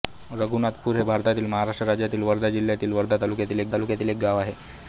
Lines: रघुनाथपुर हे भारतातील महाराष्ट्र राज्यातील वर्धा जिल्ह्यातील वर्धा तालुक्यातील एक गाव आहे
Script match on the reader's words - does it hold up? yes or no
no